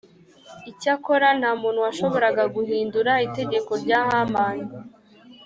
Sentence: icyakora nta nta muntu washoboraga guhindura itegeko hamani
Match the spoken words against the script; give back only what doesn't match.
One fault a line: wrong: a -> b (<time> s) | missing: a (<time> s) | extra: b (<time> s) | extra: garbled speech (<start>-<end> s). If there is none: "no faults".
missing: nta (1.5 s)
extra: rya (3.8 s)